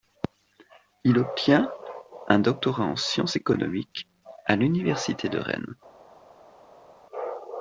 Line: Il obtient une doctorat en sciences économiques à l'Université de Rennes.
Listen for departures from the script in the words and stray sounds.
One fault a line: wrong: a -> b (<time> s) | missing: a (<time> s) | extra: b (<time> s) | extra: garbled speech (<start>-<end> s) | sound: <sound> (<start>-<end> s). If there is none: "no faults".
wrong: une -> un (2.3 s)